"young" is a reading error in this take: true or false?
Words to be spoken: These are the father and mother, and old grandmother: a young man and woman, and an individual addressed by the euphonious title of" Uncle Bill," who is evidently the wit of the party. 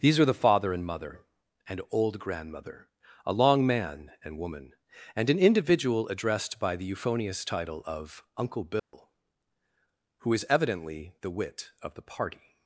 true